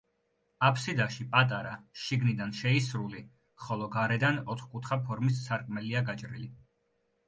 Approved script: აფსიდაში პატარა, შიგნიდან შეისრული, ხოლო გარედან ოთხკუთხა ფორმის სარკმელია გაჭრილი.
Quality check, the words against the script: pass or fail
pass